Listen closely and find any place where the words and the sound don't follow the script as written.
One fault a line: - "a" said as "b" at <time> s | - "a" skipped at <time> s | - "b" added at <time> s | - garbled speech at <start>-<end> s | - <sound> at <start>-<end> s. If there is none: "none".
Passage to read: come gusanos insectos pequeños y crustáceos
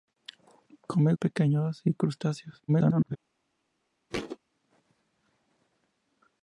- "gusanos insectos" skipped at 1.1 s
- garbled speech at 2.7-3.2 s
- thud at 4.1-4.4 s